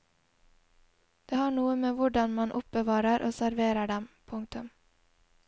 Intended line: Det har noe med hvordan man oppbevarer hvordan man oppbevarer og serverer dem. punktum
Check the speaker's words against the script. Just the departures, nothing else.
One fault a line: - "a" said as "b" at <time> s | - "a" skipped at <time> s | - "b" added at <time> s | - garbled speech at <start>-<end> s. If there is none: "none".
- "hvordan man oppbevarer" skipped at 3.3 s